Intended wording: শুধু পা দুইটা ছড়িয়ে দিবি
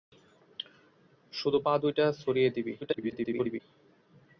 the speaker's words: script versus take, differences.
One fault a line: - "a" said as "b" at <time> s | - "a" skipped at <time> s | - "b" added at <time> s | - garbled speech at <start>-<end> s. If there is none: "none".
- garbled speech at 2.8-3.6 s